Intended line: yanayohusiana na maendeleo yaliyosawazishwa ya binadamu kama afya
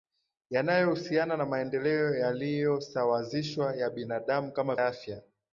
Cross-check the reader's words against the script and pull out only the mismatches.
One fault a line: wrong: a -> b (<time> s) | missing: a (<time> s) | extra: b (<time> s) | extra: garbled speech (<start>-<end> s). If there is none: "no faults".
no faults